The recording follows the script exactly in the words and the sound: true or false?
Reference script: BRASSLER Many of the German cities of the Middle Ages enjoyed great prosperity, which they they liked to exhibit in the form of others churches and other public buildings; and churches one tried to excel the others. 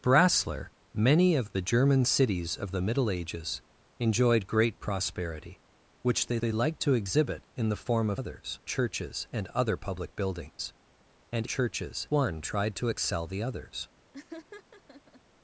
false